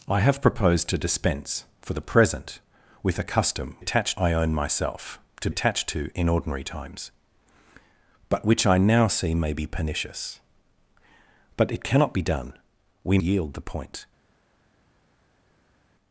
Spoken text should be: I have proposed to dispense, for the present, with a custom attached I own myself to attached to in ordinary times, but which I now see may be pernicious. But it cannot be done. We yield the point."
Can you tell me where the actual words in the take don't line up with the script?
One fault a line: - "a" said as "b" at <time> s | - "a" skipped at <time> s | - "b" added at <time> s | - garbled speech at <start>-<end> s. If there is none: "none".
none